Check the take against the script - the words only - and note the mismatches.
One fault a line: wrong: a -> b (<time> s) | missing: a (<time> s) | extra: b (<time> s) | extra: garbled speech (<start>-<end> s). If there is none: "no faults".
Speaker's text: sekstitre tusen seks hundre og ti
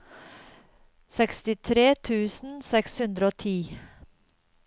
no faults